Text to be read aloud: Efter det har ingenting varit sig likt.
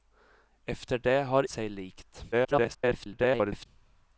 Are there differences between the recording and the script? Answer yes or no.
yes